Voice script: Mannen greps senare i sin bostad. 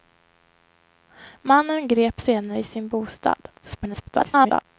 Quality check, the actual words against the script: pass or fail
fail